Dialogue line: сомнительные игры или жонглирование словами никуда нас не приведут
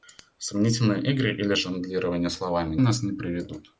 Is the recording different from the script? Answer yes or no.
yes